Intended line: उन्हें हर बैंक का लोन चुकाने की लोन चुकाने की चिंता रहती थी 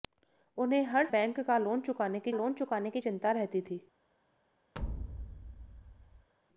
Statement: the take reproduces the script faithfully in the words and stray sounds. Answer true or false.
false